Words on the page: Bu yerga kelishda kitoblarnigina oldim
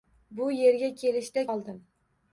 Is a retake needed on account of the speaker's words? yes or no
yes